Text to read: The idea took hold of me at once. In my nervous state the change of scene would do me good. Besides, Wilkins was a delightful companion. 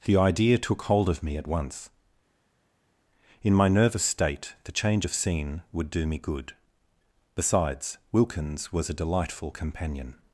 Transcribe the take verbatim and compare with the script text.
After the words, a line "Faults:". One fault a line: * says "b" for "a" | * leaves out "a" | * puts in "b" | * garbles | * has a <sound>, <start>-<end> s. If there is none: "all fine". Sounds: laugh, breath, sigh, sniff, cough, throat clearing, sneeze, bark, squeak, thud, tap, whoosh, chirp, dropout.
The idea took hold of me at once. In my nervous state the change of scene would do me good. Besides, Wilkins was a delightful companion.
Faults:
all fine